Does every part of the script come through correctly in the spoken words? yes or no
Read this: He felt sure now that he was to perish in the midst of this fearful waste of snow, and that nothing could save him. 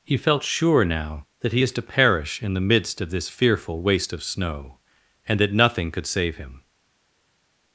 no